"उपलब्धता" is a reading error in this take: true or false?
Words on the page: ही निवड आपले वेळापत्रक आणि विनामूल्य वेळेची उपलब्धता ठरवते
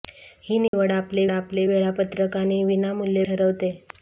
true